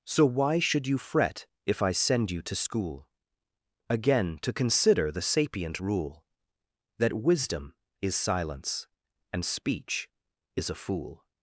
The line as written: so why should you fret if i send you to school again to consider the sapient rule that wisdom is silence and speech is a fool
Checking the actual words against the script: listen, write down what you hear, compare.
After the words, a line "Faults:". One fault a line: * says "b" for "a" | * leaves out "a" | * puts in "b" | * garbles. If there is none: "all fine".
so why should you fret if i send you to school again to consider the sapient rule that wisdom is silence and speech is a fool
Faults:
all fine